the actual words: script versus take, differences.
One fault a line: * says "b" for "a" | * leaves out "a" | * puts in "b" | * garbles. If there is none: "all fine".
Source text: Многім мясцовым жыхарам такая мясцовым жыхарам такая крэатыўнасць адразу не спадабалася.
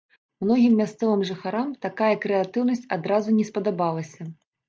* leaves out "мясцовым жыхарам такая"